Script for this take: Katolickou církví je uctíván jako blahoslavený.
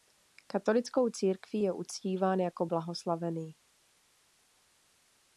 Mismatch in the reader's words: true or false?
false